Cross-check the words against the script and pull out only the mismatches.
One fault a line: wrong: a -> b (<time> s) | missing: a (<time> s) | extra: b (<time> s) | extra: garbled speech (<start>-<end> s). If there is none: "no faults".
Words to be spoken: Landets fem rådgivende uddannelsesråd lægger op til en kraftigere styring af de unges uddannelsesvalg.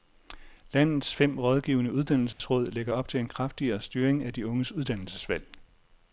no faults